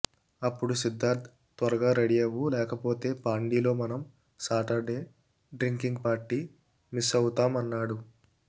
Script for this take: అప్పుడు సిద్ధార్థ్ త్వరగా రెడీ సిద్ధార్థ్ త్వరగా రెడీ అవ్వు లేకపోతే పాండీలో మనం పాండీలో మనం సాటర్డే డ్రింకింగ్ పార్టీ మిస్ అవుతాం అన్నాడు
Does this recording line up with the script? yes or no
no